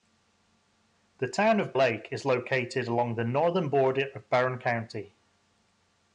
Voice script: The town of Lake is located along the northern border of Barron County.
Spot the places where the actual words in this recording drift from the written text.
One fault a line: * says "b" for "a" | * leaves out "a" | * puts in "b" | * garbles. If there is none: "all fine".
all fine